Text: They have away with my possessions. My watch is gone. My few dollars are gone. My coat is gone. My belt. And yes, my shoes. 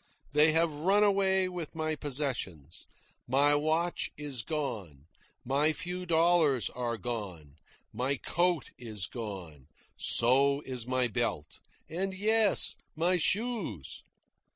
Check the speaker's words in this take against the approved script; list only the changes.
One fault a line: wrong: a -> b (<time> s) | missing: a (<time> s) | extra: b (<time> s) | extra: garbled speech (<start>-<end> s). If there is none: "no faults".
extra: run (0.7 s)
extra: So is (10.0 s)